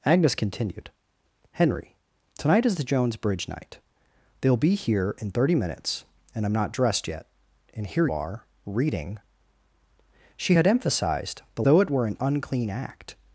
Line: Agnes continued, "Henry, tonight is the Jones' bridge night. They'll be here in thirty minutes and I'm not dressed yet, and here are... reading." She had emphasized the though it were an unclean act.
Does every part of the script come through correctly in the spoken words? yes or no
yes